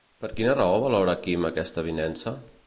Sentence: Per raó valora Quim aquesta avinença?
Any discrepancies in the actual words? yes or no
yes